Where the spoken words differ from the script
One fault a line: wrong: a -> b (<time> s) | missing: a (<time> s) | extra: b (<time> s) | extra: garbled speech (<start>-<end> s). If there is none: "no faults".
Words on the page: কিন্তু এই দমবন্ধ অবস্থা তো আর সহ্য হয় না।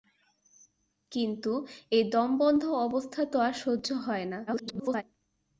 extra: garbled speech (4.5-5.0 s)